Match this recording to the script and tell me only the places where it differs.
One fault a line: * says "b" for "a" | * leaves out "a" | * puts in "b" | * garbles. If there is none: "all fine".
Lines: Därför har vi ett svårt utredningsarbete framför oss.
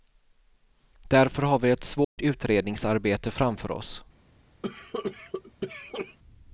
all fine